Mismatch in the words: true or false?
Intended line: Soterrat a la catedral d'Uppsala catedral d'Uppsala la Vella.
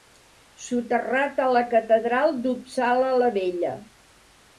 true